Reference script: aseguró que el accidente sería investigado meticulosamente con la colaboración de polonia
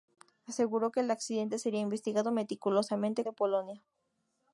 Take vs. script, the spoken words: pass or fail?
fail